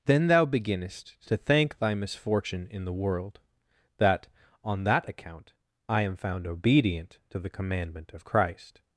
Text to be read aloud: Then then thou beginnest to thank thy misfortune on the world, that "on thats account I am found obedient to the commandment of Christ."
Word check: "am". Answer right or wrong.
right